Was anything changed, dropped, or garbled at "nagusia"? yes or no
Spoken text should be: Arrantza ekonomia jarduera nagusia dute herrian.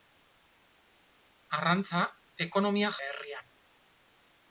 yes